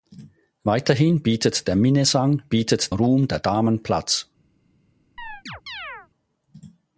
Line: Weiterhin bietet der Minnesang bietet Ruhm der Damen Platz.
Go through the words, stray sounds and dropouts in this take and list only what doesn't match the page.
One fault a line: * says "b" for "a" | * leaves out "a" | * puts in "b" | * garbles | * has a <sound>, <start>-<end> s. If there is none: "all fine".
* has a chirp, 5.2-6.1 s